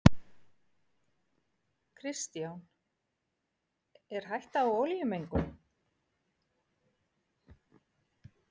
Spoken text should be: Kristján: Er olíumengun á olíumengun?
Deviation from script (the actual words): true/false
true